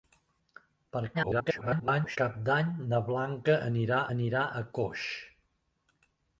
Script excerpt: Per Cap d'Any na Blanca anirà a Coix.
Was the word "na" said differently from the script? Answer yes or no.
no